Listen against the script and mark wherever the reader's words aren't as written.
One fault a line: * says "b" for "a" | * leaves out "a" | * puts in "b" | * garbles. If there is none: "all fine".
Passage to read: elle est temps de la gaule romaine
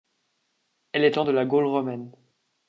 all fine